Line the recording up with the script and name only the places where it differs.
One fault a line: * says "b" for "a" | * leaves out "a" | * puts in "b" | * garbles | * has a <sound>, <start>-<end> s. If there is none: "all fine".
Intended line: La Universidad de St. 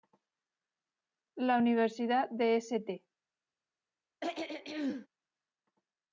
* has a throat clearing, 4.2-5.1 s